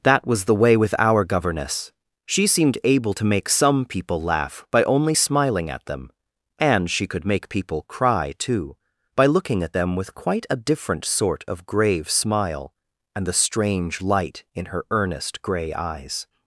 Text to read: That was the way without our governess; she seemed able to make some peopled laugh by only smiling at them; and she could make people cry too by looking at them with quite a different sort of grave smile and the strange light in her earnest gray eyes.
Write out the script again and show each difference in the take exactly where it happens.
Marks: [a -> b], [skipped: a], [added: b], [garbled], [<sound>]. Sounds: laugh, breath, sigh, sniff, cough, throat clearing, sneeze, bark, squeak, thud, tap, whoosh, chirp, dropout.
That was the way [without -> with] our governess; she seemed able to make some [peopled -> people] laugh by only smiling at them; and she could make people cry too by looking at them with quite a different sort of grave smile and the strange light in her earnest gray eyes.